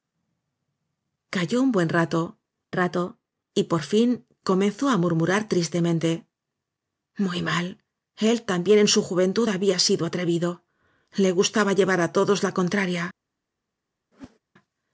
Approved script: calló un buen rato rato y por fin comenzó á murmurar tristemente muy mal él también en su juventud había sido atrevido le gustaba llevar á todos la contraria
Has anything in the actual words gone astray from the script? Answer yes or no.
no